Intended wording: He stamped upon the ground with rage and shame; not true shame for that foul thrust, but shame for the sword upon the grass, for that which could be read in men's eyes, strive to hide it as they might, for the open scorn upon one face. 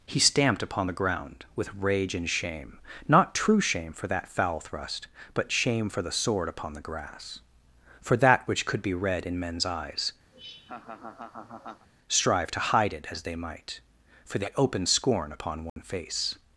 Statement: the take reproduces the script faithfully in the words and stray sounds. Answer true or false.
false